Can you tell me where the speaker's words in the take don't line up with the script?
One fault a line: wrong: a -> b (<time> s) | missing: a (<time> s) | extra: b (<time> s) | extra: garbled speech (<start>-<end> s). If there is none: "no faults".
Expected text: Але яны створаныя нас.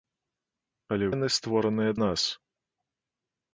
no faults